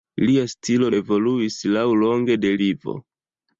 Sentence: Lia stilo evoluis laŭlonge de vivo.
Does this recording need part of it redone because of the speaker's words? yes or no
no